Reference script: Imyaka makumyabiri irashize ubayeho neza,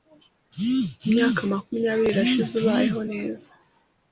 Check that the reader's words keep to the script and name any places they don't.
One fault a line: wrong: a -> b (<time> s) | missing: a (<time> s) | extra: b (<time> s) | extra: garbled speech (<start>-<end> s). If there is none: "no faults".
no faults